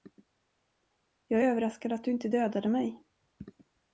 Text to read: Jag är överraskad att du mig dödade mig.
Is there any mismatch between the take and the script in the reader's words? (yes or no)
yes